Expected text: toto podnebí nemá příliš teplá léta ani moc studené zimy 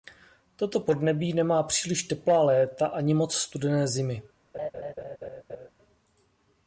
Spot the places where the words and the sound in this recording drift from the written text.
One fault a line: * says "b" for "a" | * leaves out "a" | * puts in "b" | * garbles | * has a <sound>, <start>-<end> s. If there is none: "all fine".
* has a laugh, 4.5-5.7 s